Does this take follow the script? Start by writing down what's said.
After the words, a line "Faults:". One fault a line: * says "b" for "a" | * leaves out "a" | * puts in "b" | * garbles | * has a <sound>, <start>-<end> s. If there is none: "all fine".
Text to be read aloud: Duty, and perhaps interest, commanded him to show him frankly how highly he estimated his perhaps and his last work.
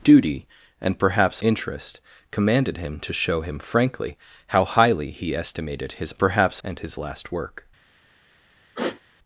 Duty, and perhaps interest, commanded him to show him frankly how highly he estimated his perhaps and his last work.
Faults:
* has a sigh, 8.8-9.0 s